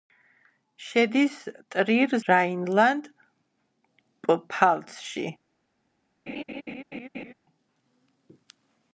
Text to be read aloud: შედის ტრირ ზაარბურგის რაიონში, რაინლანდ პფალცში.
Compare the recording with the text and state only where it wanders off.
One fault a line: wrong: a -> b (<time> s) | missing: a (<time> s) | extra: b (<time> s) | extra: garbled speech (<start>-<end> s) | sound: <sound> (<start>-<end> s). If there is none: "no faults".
missing: ზაარბურგის რაიონში (2.1 s)
sound: laugh (6.3-7.3 s)